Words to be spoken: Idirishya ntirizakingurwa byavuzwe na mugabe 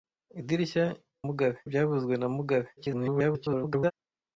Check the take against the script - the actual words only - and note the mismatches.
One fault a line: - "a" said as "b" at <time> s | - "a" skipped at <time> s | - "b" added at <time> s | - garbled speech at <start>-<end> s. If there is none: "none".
- "ntirizakingurwa" said as "mugabe" at 1.3 s
- garbled speech at 2.8-3.9 s